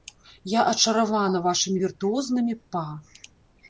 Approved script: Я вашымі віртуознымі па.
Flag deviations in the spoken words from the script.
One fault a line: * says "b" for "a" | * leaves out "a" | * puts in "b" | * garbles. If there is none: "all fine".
* puts in "ачаравана"